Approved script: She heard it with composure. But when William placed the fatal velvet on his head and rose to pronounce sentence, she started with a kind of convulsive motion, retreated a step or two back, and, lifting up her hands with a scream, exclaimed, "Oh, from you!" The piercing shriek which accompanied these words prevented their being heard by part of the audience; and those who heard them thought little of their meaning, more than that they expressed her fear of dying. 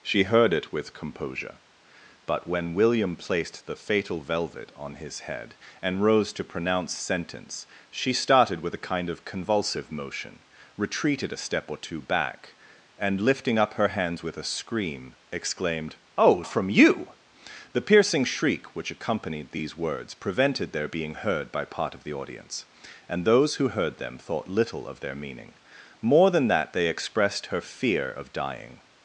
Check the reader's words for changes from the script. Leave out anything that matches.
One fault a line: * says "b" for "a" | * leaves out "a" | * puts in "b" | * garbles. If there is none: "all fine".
all fine